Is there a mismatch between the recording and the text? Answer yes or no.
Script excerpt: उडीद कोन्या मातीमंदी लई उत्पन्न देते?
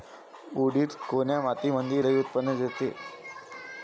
no